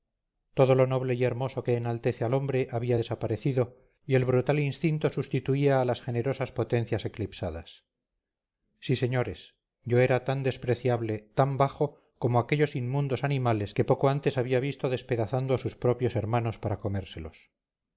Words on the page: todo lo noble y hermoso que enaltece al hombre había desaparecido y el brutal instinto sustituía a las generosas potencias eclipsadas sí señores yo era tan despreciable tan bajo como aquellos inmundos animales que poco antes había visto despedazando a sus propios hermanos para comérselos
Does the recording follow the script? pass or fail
pass